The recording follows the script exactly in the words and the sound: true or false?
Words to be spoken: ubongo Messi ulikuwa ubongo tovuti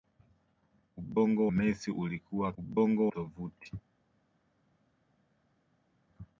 true